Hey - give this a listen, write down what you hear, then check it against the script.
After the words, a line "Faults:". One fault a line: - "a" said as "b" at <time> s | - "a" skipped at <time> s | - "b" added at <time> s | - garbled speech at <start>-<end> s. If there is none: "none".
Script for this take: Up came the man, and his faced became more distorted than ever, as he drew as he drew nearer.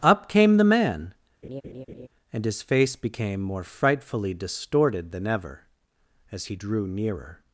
Up came the man, and his face became more frightfully distorted than ever, as he drew nearer.
Faults:
- "faced" said as "face" at 2.6 s
- "frightfully" added at 3.6 s
- "as he drew" skipped at 6.9 s